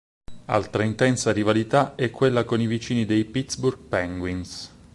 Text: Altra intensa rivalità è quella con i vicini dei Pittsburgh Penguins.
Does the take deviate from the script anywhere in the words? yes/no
no